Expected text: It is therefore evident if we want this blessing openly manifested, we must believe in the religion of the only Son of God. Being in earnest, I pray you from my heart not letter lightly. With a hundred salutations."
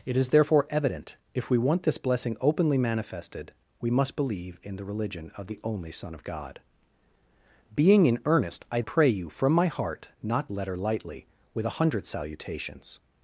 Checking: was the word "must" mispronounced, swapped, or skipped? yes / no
no